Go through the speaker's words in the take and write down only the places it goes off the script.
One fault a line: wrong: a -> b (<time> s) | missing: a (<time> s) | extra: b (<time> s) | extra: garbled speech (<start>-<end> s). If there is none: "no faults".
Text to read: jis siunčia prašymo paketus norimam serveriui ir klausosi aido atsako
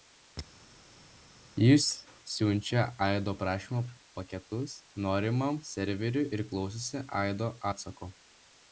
extra: aido (3.0 s)